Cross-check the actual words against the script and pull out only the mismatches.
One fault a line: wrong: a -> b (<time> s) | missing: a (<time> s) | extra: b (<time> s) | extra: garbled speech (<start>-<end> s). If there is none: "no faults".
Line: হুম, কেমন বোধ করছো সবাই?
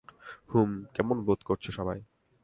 no faults